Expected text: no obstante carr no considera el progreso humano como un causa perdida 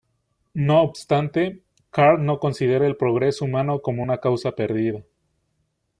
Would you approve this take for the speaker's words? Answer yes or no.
no